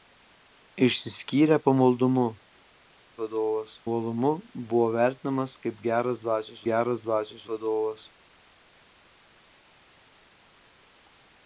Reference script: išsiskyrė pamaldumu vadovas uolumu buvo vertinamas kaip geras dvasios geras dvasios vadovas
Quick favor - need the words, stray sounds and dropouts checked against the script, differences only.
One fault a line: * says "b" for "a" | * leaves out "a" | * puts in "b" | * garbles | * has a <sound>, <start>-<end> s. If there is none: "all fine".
all fine